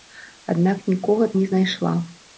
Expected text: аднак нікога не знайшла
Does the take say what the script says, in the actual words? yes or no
yes